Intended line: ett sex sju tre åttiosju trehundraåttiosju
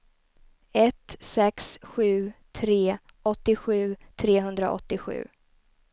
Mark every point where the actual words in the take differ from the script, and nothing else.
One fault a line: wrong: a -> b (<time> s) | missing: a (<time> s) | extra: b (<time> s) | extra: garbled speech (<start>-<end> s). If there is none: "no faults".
no faults